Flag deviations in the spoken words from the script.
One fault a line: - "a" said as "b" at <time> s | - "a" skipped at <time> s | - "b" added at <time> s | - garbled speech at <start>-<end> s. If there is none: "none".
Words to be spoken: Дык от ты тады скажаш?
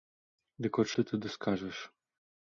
none